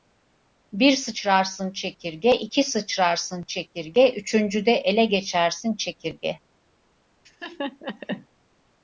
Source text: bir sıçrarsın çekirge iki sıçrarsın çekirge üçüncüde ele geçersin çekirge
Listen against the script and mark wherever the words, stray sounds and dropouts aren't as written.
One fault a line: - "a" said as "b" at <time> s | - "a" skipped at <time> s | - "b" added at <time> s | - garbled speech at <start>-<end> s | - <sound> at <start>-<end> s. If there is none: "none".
- laugh at 7.2-8.3 s